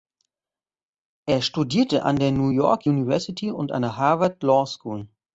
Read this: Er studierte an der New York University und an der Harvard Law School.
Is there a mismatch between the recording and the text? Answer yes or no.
no